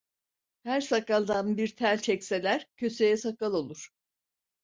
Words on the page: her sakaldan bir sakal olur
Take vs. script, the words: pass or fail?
fail